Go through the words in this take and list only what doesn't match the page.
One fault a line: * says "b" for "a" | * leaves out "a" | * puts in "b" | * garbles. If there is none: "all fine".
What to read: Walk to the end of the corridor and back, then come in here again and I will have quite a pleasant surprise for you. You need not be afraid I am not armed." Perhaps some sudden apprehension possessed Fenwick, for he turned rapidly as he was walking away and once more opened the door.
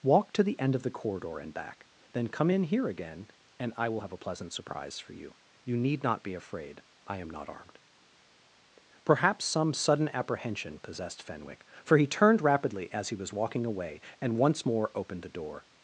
* leaves out "quite"